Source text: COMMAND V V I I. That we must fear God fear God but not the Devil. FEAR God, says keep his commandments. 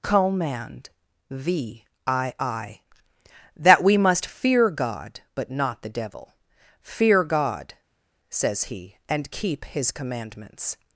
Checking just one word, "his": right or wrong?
right